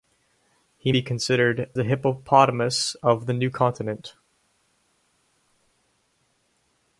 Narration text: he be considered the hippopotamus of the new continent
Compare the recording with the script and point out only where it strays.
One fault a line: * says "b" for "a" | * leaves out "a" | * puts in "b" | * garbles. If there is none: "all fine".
all fine